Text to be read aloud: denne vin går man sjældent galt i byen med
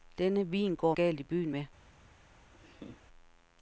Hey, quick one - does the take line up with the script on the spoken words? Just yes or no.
no